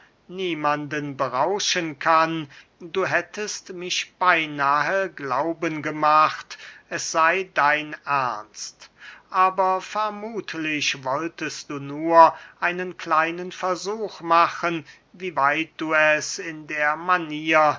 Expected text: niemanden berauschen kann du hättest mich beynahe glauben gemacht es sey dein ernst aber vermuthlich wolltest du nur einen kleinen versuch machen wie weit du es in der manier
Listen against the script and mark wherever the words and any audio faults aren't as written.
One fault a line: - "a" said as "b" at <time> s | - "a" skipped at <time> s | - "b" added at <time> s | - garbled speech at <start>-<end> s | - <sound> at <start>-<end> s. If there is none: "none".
none